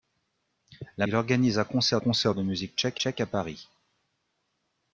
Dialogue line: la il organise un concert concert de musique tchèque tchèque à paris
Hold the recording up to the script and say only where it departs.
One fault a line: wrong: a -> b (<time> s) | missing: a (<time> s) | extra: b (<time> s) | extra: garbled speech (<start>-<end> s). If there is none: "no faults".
no faults